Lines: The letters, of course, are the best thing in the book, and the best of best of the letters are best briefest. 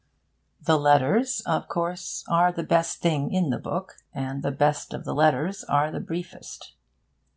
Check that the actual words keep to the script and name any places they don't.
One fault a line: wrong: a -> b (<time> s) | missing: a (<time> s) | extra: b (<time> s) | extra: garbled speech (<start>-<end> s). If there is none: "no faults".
missing: best of (5.0 s)
wrong: best -> the (5.9 s)